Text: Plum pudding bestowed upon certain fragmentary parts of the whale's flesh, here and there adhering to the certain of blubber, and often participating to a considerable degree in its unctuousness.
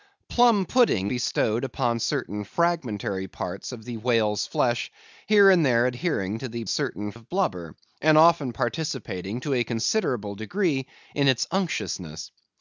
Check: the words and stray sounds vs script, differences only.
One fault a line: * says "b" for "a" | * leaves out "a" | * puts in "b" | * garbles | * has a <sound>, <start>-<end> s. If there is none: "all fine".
all fine